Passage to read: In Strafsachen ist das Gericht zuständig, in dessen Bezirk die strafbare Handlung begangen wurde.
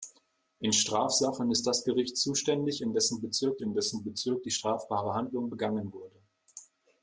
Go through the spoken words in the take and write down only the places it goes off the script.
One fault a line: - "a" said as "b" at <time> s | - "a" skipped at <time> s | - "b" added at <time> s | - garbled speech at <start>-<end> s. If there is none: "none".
- "in dessen Bezirk" added at 3.6 s